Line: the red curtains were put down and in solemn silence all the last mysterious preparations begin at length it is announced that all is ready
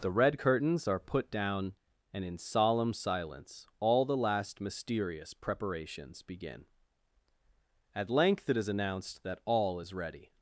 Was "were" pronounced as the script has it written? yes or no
no